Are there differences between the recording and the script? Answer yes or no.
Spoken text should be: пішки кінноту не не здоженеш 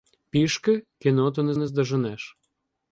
no